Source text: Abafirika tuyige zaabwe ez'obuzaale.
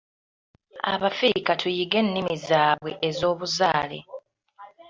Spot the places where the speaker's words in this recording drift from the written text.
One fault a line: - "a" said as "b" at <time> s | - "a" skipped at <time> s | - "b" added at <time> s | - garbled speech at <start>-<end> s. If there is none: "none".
- "ennimi" added at 2.0 s